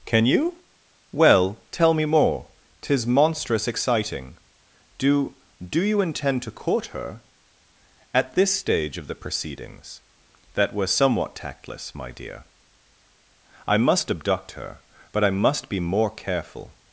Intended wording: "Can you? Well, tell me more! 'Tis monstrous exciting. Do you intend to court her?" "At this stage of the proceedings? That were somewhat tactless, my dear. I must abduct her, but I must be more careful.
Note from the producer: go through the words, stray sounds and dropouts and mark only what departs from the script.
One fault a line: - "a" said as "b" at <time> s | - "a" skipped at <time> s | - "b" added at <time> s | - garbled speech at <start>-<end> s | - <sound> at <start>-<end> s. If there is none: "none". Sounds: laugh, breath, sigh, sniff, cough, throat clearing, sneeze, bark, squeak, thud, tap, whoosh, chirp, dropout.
- "Do" added at 5.6 s